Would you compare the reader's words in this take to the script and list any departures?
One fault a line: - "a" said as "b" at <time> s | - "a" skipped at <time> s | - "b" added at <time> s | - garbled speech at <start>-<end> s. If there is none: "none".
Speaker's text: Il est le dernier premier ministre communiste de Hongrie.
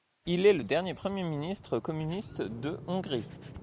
none